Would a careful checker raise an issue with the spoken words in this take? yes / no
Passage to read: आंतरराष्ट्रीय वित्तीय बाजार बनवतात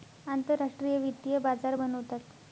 no